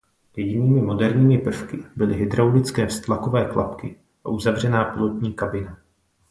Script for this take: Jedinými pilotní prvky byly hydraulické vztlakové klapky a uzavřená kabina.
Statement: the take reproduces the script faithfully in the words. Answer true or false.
false